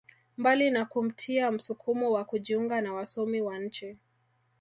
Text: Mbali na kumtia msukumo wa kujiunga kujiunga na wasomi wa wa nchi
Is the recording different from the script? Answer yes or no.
yes